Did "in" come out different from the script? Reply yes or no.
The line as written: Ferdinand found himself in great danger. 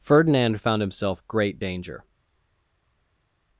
yes